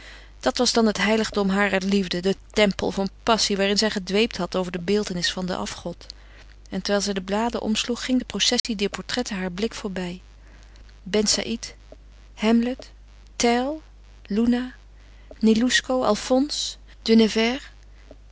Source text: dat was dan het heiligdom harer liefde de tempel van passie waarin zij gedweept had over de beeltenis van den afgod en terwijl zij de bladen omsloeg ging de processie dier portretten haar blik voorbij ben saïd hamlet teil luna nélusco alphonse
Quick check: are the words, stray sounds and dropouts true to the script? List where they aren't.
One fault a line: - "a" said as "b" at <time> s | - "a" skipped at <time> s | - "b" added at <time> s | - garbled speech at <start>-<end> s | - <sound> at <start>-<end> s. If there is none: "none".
- dropout at 8.6-8.6 s